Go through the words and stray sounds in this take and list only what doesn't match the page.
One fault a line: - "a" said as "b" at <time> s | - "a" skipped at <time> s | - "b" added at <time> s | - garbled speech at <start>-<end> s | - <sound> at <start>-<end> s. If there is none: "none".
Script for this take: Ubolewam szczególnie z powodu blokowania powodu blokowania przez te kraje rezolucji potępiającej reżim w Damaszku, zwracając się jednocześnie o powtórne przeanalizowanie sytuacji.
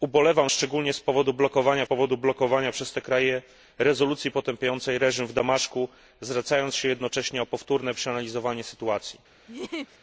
- laugh at 9.5-10.0 s